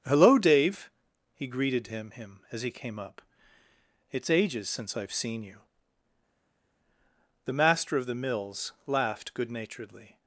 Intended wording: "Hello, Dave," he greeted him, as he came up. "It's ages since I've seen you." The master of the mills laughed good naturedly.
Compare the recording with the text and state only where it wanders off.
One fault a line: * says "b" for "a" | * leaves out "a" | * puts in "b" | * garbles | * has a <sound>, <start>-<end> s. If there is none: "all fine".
* puts in "him"